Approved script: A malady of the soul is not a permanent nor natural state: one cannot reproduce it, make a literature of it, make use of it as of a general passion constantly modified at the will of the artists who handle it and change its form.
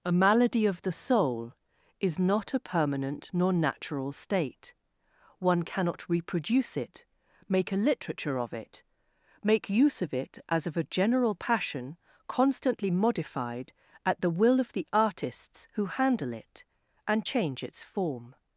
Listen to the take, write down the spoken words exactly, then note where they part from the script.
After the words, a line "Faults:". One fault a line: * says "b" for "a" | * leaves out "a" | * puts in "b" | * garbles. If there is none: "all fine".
A malady of the soul is not a permanent nor natural state: one cannot reproduce it, make a literature of it, make use of it as of a general passion constantly modified at the will of the artists who handle it and change its form.
Faults:
all fine